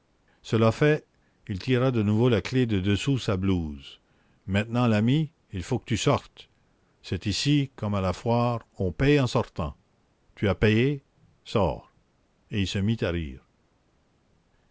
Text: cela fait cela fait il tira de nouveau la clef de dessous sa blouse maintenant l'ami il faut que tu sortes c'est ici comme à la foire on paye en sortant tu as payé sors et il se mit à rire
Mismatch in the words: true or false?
true